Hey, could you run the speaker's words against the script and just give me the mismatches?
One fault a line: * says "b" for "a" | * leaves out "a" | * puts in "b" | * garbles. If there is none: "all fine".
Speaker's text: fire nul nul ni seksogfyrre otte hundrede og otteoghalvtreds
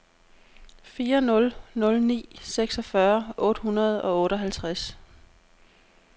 all fine